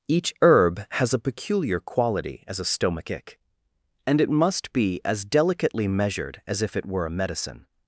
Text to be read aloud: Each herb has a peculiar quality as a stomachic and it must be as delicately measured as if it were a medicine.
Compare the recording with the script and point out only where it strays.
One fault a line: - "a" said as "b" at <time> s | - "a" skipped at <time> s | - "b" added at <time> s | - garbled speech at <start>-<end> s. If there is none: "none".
none